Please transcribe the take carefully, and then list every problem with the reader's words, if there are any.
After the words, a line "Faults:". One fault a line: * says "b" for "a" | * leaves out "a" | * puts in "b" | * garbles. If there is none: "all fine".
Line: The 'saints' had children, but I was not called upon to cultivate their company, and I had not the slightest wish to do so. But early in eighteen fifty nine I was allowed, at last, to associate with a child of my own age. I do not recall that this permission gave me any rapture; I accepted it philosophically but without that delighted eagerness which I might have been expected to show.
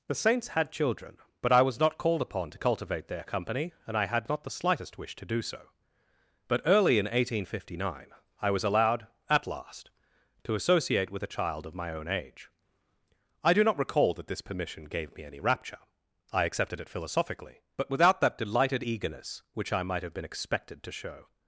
The 'saints' had children, but I was not called upon to cultivate their company, and I had not the slightest wish to do so. But early in eighteen fifty nine I was allowed, at last, to associate with a child of my own age. I do not recall that this permission gave me any rapture; I accepted it philosophically but without that delighted eagerness which I might have been expected to show.
Faults:
all fine